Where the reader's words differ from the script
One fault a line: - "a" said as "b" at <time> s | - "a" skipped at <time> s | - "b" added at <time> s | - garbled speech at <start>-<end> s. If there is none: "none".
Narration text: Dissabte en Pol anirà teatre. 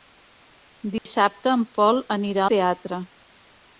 none